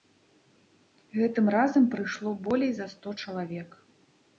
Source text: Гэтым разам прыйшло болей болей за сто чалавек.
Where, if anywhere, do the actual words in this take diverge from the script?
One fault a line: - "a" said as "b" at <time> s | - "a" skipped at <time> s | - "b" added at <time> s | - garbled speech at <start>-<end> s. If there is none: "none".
- "болей" skipped at 2.8 s